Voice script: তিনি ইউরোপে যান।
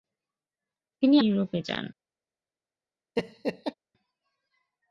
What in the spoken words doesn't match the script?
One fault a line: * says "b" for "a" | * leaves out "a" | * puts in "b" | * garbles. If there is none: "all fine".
all fine